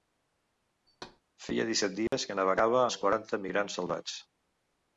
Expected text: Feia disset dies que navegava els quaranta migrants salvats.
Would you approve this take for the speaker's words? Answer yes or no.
yes